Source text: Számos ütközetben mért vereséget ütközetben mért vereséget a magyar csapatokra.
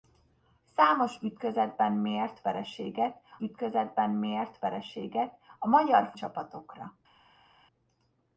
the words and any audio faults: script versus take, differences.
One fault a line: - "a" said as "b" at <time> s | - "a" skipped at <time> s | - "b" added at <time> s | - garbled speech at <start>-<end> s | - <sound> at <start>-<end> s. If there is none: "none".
none